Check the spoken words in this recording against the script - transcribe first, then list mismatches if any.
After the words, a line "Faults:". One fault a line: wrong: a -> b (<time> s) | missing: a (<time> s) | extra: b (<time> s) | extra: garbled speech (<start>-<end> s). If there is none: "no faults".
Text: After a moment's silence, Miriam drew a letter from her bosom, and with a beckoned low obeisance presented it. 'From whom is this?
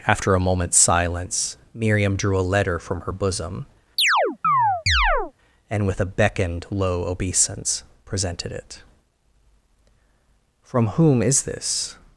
After a moment's silence, Miriam drew a letter from her bosom, and with a beckoned low obeisance presented it. 'From whom is this?
Faults:
no faults